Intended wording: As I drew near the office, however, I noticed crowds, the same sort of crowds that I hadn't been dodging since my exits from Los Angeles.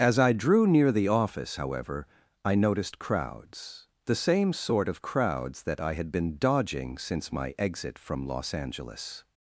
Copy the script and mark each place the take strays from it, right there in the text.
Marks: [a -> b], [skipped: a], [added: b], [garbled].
As I drew near the office, however, I noticed crowds, the same sort of crowds that I [hadn't -> had] been dodging since my [exits -> exit] from Los Angeles.